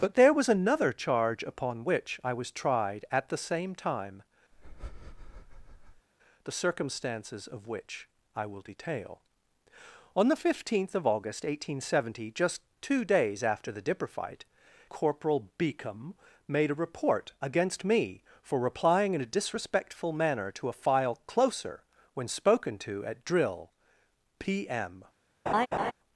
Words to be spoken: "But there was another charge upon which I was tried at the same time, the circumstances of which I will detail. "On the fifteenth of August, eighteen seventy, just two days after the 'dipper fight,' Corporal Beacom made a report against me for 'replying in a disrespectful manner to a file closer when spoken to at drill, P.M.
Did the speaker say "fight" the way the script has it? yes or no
yes